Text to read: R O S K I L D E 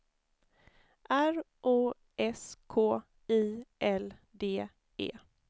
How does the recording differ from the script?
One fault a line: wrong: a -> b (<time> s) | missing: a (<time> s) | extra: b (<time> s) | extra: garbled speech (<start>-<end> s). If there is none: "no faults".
no faults